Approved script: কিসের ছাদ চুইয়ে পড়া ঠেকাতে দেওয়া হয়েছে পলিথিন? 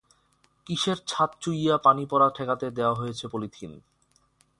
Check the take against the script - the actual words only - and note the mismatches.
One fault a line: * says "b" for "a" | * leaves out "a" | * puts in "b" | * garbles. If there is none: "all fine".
* puts in "পানি"